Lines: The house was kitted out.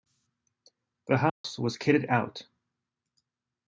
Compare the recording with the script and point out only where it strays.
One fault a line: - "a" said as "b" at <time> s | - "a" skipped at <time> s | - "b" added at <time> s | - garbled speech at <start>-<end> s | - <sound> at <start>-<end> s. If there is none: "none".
- dropout at 1.3-1.4 s